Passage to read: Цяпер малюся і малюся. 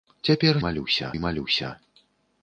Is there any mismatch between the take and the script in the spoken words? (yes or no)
no